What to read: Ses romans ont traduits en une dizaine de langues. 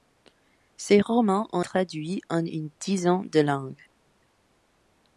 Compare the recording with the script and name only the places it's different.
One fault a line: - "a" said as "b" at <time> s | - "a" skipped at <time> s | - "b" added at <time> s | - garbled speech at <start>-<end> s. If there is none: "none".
none